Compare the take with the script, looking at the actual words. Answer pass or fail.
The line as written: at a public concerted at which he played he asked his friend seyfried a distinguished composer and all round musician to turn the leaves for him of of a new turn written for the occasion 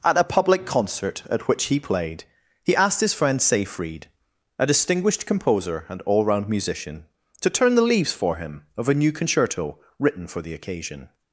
fail